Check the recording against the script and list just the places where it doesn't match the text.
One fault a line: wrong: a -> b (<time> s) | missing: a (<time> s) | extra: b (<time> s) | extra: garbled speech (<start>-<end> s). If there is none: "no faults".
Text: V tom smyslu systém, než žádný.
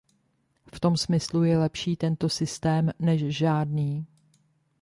extra: je lepší tento (1.4 s)